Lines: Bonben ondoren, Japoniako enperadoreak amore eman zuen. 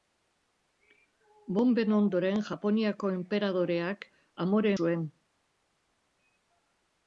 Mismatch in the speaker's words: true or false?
true